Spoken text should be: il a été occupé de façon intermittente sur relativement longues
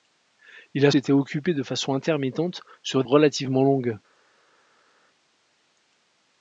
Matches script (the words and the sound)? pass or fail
pass